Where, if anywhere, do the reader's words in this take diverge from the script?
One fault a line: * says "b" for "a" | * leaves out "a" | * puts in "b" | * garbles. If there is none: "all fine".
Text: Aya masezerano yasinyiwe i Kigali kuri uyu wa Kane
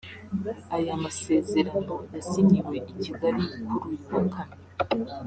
all fine